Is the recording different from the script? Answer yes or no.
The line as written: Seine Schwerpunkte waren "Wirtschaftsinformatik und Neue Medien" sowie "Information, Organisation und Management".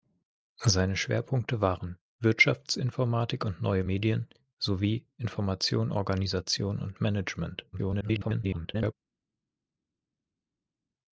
yes